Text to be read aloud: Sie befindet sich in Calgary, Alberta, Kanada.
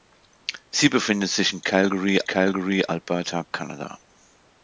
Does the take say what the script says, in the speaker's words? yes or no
no